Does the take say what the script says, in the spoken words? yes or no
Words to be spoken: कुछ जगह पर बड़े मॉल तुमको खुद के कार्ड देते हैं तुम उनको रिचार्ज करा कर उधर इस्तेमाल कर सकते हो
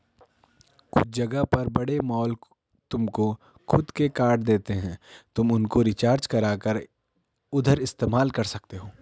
yes